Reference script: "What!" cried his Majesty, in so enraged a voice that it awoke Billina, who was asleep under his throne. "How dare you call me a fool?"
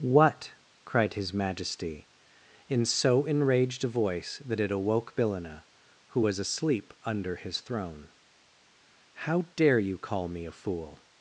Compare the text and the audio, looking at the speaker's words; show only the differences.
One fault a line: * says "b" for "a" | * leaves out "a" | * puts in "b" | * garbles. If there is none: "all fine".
all fine